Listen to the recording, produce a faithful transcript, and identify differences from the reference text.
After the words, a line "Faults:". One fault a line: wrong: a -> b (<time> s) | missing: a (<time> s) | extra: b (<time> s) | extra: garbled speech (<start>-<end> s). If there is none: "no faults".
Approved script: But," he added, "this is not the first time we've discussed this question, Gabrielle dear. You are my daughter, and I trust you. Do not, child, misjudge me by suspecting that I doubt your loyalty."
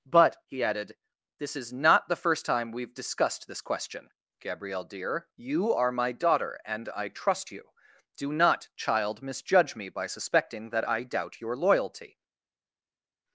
But," he added, "this is not the first time we've discussed this question, Gabrielle dear. You are my daughter, and I trust you. Do not, child, misjudge me by suspecting that I doubt your loyalty."
Faults:
no faults